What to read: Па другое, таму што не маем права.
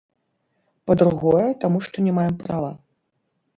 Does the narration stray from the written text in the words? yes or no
no